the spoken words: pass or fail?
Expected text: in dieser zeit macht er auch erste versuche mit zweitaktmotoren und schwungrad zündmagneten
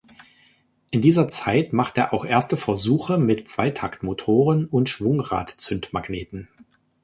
pass